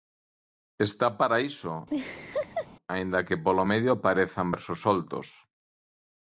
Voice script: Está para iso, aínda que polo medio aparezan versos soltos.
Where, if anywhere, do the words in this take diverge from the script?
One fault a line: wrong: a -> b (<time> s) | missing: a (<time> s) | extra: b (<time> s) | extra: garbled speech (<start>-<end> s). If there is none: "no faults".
no faults